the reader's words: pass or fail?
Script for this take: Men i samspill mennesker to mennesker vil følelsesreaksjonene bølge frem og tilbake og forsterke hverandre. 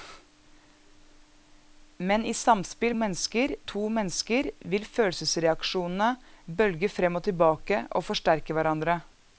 pass